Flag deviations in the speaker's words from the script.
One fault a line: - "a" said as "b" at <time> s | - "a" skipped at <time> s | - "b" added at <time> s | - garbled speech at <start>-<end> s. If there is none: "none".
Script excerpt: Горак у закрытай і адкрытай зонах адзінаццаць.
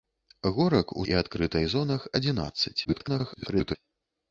- "закрытай" skipped at 1.1 s
- garbled speech at 2.8-3.8 s